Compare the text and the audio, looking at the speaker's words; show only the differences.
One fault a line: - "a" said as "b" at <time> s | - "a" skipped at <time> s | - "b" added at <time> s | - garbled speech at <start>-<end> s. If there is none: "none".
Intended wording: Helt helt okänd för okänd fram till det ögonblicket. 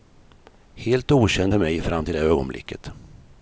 - "helt" skipped at 1.1 s
- "okänd" said as "mig" at 1.6 s